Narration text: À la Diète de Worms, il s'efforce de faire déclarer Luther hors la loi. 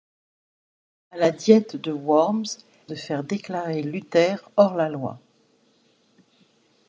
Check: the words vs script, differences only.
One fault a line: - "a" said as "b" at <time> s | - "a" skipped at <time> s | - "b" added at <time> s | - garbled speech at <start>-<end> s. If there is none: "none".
- "il s'efforce" skipped at 2.5 s